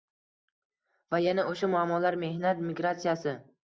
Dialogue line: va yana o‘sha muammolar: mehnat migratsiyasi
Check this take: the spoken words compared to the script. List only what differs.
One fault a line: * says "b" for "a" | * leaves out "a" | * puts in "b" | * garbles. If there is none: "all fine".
all fine